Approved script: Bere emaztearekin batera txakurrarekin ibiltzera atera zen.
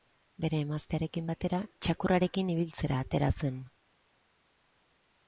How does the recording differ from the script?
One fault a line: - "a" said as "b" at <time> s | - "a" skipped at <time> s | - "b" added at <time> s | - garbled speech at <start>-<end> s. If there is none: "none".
none